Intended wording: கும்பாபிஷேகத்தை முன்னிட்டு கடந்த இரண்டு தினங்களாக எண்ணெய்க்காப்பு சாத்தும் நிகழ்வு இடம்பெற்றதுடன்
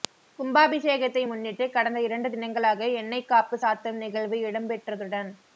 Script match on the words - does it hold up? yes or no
yes